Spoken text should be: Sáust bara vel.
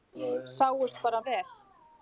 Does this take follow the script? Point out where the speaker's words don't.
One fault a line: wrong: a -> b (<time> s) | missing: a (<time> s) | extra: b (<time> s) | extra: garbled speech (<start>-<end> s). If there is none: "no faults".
no faults